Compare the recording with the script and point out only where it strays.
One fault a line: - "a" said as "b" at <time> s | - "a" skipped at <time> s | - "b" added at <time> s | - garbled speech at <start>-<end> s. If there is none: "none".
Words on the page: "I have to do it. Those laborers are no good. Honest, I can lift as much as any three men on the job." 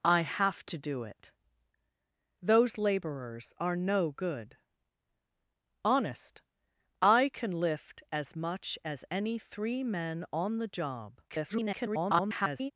- garbled speech at 11.3-12.7 s